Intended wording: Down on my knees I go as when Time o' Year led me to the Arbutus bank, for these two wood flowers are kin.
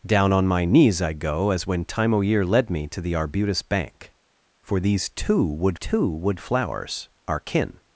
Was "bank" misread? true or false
false